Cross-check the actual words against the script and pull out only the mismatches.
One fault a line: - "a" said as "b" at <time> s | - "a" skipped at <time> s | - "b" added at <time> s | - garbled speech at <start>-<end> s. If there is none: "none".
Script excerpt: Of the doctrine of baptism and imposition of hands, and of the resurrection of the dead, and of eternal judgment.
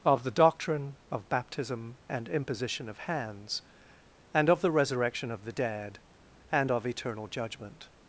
none